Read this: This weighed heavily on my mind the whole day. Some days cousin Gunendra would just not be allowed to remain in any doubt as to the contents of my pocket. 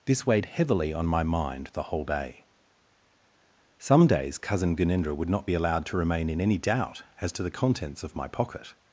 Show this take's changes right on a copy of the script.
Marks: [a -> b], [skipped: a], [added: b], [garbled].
This weighed heavily on my mind the whole day. Some days cousin Gunendra would [skipped: just] not be allowed to remain in any doubt as to the contents of my pocket.